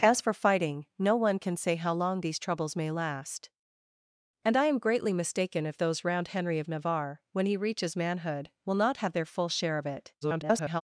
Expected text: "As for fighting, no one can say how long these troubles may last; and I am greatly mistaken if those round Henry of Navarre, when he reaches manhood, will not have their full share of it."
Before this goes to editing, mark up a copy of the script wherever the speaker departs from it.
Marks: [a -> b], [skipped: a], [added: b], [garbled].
"As for fighting, no one can say how long these troubles may last; and I am greatly mistaken if those round Henry of Navarre, when he reaches manhood, will not have their full share of it." [garbled]